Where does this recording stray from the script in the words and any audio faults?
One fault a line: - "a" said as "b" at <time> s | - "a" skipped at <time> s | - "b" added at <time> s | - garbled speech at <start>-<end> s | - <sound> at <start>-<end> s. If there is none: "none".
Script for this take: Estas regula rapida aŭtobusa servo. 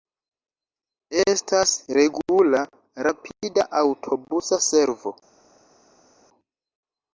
none